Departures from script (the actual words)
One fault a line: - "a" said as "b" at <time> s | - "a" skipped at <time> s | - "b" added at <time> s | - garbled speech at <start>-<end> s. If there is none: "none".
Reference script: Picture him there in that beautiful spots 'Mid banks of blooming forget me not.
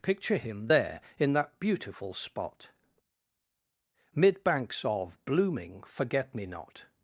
- "spots" said as "spot" at 2.1 s